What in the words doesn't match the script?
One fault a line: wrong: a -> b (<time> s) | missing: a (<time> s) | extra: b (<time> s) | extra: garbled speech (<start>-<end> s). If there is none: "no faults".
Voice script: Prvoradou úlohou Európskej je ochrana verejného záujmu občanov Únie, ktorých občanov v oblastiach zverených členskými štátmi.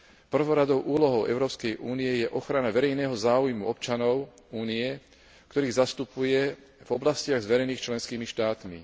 extra: únie (1.8 s)
wrong: občanov -> zastupuje (5.8 s)